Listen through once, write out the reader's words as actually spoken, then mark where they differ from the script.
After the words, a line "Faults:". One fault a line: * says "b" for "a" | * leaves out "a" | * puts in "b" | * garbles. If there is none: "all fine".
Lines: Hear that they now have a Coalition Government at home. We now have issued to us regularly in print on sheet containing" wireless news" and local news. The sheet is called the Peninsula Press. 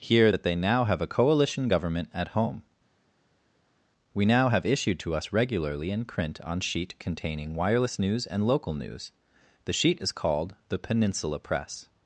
Hear that they now have a Coalition Government at home. We now have issued to us regularly in print on sheet containing" wireless news" and local news. The sheet is called the Peninsula Press.
Faults:
all fine